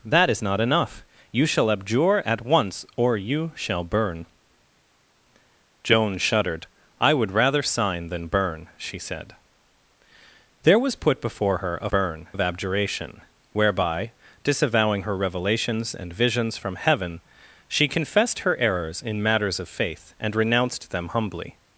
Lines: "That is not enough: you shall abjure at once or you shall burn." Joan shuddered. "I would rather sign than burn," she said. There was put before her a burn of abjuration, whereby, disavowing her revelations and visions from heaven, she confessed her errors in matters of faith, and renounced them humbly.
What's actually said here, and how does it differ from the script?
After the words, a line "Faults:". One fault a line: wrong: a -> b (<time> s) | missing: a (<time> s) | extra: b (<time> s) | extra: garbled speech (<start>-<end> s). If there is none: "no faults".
"That is not enough: you shall abjure at once or you shall burn." Joan shuddered. "I would rather sign than burn," she said. There was put before her a burn of abjuration, whereby, disavowing her revelations and visions from heaven, she confessed her errors in matters of faith, and renounced them humbly.
Faults:
no faults